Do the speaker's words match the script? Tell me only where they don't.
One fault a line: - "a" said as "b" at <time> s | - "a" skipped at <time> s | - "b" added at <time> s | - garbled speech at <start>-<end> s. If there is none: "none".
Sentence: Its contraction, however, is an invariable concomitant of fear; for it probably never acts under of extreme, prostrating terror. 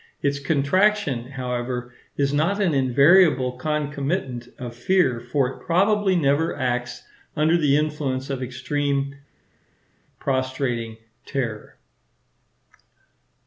- "not" added at 2.3 s
- "the influence" added at 7.5 s